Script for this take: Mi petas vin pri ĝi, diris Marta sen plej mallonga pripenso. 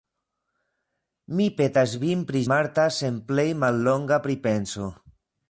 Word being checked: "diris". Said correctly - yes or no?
no